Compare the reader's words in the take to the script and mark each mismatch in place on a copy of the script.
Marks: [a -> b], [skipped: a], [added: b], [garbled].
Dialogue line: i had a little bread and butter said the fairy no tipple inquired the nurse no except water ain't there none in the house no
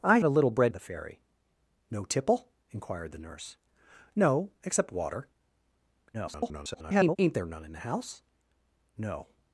i [skipped: had] a little bread [skipped: and butter said] the fairy no tipple inquired the nurse no except water [garbled] ain't there none in the house no